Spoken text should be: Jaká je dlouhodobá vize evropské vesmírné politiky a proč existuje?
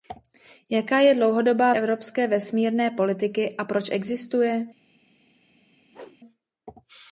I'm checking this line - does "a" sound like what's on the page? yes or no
yes